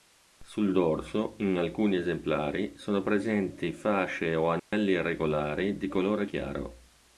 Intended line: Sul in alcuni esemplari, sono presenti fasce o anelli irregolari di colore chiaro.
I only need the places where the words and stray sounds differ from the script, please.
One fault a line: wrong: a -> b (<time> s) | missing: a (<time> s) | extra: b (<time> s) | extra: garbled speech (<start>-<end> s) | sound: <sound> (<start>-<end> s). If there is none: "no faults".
extra: dorso (0.7 s)
sound: dropout (4.6-4.7 s)